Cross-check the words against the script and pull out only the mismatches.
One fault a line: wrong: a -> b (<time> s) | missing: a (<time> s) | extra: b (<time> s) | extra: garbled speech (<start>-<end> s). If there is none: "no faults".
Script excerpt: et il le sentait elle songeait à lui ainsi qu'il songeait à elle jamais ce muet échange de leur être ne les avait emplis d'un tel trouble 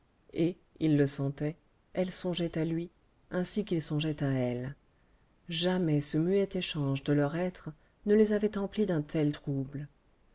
no faults